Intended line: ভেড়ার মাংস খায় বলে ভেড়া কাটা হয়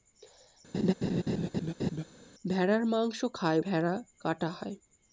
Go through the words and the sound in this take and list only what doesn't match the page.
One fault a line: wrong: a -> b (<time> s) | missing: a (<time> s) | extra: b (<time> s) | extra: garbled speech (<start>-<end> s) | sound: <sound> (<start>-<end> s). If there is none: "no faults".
sound: laugh (0.7-2.0 s)
missing: বলে (3.6 s)